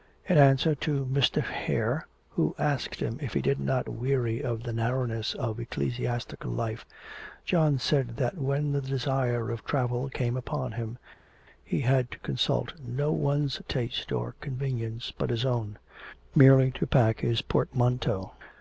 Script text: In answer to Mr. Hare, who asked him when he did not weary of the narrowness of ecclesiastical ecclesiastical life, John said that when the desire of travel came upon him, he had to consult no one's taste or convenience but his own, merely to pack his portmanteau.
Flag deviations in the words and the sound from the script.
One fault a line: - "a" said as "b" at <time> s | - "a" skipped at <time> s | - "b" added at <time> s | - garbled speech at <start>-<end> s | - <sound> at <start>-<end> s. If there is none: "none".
- "when" said as "if" at 3.2 s
- "ecclesiastical" skipped at 6.5 s